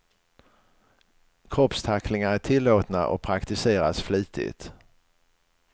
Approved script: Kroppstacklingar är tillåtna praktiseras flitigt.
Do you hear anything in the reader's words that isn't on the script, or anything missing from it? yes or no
yes